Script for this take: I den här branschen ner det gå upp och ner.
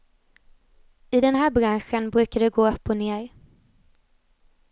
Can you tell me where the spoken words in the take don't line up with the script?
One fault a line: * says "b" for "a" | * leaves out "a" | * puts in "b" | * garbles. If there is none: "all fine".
* says "brukar" for "ner"